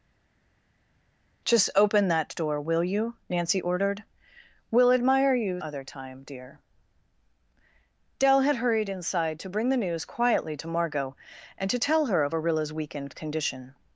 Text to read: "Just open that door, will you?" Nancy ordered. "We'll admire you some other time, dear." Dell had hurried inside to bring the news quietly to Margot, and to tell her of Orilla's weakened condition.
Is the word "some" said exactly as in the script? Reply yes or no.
no